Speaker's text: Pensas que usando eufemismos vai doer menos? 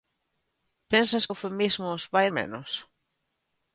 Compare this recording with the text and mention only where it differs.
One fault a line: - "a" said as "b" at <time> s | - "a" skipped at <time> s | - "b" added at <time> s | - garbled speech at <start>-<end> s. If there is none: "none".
- "que usando" skipped at 1.2 s
- "doer" skipped at 2.3 s